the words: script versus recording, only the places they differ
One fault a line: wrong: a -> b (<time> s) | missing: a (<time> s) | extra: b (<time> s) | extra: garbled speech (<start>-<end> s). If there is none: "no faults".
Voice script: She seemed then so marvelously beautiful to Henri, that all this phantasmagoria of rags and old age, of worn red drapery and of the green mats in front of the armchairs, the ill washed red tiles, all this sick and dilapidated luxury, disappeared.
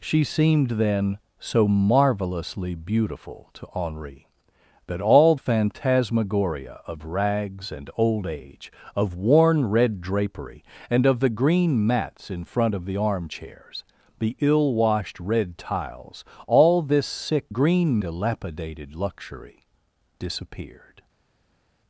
missing: this (5.3 s)
wrong: and -> green (17.5 s)